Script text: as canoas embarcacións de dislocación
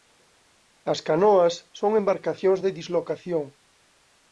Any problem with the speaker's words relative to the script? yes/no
yes